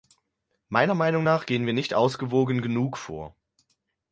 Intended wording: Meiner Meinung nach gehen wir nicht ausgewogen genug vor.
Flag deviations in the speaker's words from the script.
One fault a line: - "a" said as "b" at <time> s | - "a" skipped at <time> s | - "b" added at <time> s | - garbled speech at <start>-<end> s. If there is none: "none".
none